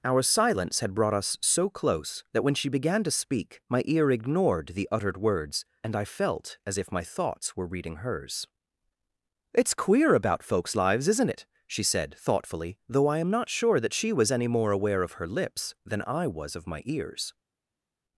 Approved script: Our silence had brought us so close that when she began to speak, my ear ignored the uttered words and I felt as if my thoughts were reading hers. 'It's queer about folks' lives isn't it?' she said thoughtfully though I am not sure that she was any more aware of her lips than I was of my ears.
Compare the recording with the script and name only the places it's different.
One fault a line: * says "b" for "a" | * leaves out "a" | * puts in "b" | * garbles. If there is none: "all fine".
all fine